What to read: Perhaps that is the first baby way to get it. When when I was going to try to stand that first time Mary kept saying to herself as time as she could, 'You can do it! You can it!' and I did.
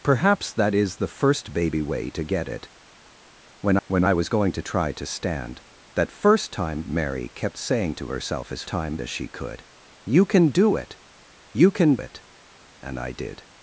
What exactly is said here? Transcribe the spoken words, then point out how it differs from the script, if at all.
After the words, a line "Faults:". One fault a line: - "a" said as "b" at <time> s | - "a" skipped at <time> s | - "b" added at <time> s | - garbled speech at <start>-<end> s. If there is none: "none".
Perhaps that is the first baby way to get it. When when I was going to try to stand that first time Mary kept saying to herself as time as she could, 'You can do it! You can it!' and I did.
Faults:
none